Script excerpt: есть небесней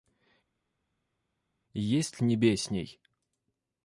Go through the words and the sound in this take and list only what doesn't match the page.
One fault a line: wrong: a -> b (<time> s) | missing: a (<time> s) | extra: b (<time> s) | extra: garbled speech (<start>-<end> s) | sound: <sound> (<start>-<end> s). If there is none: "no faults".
no faults